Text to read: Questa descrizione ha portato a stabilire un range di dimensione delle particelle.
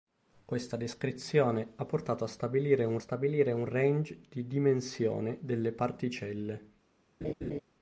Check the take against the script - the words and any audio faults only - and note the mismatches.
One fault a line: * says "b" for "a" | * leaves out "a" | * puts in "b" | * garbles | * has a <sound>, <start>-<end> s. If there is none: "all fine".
* puts in "stabilire un"
* has a laugh, 7.2-7.6 s